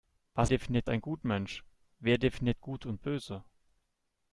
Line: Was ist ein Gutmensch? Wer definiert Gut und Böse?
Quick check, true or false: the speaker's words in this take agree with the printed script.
false